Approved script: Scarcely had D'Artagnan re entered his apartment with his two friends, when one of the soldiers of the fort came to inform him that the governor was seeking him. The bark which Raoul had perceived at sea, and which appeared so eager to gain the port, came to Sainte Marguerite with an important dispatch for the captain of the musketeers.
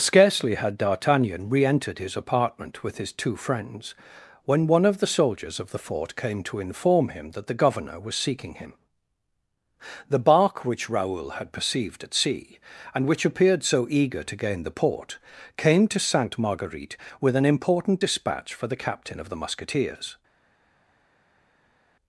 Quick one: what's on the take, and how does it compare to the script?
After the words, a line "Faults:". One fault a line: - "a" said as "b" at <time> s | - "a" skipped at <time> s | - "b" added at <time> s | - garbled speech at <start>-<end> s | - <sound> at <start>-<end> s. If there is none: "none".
Scarcely had D'Artagnan re entered his apartment with his two friends, when one of the soldiers of the fort came to inform him that the governor was seeking him. The bark which Raoul had perceived at sea, and which appeared so eager to gain the port, came to Sainte Marguerite with an important dispatch for the captain of the musketeers.
Faults:
none